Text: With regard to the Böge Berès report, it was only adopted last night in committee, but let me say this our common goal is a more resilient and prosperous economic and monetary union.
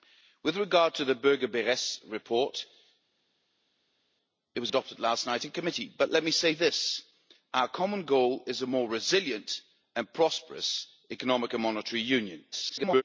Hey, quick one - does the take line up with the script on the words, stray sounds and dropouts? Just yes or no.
no